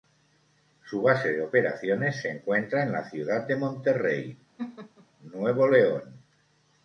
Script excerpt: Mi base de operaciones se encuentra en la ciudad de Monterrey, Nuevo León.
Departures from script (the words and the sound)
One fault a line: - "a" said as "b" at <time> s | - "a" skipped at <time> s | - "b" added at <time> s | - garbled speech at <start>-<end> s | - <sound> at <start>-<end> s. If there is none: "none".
- "Mi" said as "Su" at 0.8 s
- laugh at 4.6-5.1 s